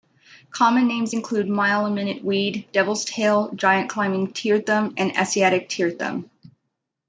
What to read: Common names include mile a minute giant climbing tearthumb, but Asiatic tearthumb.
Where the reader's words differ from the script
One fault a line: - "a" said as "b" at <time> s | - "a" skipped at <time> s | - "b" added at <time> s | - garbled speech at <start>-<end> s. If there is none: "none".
- "weed devil's tail" added at 2.2 s
- "but" said as "and" at 5.0 s